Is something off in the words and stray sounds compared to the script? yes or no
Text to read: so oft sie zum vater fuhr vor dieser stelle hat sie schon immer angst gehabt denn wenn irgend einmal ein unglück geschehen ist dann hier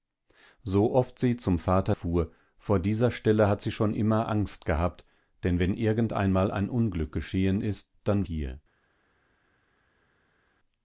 no